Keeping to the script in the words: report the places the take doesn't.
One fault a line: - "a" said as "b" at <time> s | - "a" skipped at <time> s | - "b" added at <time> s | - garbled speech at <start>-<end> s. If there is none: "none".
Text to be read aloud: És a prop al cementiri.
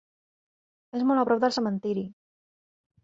- "molt" added at 1.1 s
- "al" said as "del" at 1.4 s